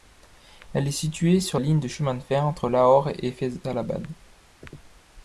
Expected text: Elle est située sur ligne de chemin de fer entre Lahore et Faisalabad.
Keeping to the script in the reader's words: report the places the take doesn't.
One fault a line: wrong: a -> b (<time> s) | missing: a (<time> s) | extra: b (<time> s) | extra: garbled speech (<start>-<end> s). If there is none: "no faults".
no faults